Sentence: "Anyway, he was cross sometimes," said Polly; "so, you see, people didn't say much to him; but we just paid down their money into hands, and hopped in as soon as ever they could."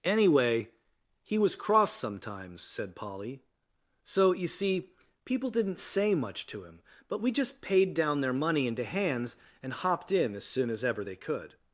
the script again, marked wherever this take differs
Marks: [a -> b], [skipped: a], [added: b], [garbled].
"Anyway, he was cross sometimes," said Polly; "so, you see, people didn't say much to him; but we just paid down their money into hands, and hopped in as soon as ever they could."